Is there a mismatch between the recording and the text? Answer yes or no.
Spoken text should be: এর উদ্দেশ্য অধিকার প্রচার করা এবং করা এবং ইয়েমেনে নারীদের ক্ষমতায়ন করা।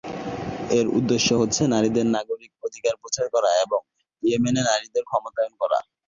yes